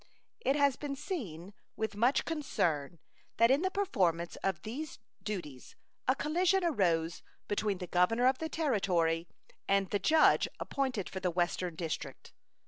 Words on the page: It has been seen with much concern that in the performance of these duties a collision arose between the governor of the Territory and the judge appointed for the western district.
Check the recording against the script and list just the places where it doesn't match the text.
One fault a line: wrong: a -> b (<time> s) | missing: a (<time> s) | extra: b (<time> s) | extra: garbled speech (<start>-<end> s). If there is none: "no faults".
no faults